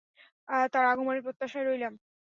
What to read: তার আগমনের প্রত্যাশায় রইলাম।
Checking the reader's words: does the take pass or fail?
pass